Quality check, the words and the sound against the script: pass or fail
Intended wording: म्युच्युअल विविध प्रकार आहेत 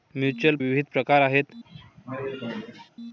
fail